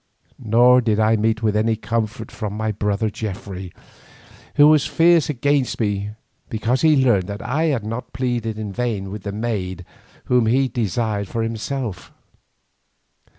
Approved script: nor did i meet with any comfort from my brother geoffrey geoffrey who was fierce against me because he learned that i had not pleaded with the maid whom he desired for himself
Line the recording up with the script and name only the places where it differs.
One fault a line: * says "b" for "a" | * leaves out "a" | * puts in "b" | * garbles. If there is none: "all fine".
* leaves out "geoffrey"
* puts in "in vain"